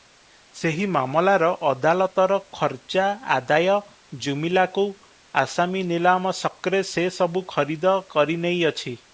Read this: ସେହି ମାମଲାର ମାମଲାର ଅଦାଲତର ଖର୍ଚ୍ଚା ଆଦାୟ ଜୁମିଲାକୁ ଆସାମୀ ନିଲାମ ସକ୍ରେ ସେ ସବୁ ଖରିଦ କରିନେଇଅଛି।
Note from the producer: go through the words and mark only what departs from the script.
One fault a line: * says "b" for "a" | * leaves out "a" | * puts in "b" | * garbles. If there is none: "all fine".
* leaves out "ମାମଲାର"